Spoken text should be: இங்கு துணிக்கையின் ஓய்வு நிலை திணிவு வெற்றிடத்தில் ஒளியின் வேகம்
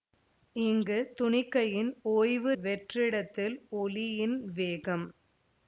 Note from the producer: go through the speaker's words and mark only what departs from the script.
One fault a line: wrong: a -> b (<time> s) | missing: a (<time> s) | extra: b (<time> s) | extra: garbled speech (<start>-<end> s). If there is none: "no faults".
missing: நிலை திணிவு (2.5 s)